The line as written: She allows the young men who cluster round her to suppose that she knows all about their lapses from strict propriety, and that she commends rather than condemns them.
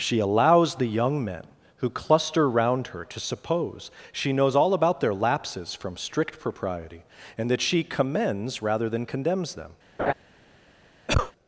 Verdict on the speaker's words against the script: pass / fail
fail